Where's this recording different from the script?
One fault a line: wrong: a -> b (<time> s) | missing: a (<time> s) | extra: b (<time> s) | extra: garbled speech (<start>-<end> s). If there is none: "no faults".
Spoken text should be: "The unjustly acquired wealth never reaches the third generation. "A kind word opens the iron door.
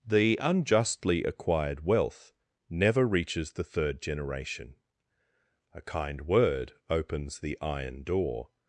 no faults